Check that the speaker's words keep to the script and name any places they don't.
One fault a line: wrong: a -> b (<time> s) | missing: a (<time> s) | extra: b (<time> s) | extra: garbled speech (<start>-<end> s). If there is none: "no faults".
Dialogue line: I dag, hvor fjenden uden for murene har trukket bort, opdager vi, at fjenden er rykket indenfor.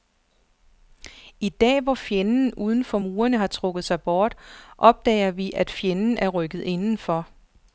extra: sig (3.8 s)